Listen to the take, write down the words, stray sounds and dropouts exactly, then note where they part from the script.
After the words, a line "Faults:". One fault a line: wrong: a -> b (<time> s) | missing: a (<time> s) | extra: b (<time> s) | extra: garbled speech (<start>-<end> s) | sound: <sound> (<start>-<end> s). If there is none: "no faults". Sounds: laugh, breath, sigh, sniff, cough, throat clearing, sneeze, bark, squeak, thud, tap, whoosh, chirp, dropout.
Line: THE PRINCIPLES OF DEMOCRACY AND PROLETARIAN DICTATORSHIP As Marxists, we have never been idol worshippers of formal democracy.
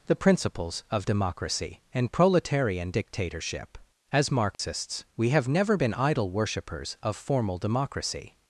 THE PRINCIPLES OF DEMOCRACY AND PROLETARIAN DICTATORSHIP As Marxists, we have never been idol worshippers of formal democracy.
Faults:
sound: dropout (4.5-4.6 s)